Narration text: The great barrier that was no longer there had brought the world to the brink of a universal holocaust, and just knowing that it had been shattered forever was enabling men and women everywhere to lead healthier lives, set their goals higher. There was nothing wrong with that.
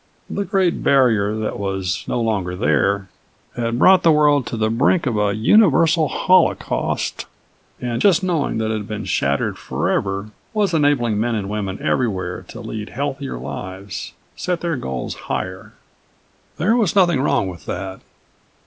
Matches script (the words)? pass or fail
pass